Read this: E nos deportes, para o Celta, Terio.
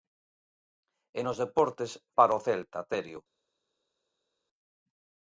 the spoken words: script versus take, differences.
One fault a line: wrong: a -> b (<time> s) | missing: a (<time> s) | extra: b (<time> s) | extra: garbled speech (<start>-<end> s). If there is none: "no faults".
no faults